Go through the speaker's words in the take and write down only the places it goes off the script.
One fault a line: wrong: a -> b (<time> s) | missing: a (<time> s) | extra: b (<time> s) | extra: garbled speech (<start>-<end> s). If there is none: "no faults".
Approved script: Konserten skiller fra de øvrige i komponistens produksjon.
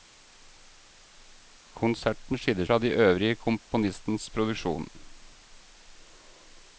no faults